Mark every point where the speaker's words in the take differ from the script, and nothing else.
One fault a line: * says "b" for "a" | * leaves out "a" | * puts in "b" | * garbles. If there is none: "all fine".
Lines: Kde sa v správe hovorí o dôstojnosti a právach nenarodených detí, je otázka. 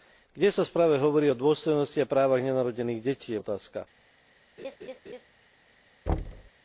all fine